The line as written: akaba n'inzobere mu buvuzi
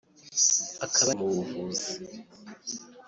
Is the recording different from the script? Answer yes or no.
yes